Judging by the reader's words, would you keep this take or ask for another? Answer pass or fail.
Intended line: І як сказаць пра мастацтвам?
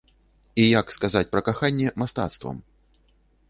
fail